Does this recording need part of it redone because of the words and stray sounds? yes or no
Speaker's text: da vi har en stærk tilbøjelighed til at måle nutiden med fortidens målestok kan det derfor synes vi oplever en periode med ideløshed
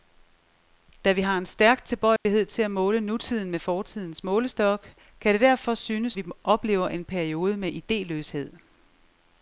yes